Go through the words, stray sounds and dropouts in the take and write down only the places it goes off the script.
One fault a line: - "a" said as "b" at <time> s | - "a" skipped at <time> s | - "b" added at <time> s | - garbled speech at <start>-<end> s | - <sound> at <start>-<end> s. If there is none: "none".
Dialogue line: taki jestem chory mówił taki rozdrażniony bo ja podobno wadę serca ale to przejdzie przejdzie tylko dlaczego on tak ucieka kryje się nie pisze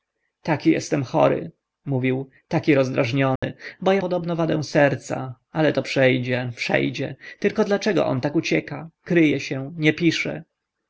- dropout at 3.4-3.4 s